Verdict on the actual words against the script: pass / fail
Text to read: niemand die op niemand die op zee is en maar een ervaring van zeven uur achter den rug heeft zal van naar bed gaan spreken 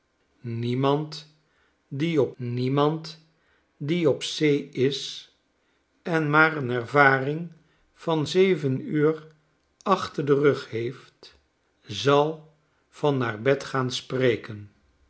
pass